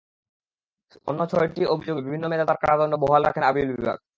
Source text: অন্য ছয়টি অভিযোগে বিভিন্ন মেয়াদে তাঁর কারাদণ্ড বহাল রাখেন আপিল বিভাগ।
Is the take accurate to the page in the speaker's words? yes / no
yes